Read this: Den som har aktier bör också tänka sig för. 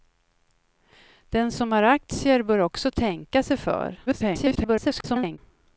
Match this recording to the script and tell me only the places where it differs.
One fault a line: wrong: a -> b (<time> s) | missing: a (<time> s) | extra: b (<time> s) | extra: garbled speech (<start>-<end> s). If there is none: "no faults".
extra: garbled speech (4.1-5.4 s)